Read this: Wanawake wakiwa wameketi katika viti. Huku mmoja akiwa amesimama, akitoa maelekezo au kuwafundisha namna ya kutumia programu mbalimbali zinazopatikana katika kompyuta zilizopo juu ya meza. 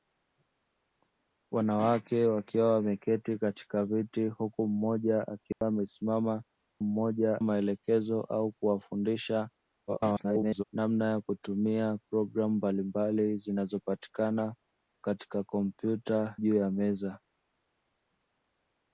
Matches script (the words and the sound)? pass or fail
fail